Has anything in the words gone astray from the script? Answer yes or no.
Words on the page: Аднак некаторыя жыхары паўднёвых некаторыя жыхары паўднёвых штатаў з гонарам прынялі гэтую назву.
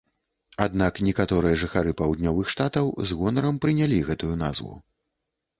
yes